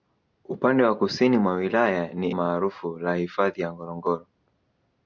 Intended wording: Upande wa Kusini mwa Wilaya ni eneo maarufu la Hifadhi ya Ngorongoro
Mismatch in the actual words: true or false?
true